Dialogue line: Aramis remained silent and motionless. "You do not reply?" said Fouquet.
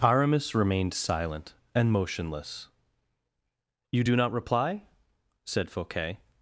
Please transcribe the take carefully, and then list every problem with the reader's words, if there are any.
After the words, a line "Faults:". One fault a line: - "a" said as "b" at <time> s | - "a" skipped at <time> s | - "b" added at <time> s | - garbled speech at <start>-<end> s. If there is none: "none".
Aramis remained silent and motionless. "You do not reply?" said Fouquet.
Faults:
none